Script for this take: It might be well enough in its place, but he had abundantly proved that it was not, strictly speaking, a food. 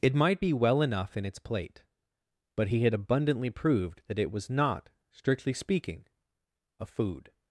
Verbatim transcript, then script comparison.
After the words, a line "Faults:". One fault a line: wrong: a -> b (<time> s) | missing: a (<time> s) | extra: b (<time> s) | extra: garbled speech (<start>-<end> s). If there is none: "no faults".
It might be well enough in its plate, but he had abundantly proved that it was not, strictly speaking, a food.
Faults:
wrong: place -> plate (1.4 s)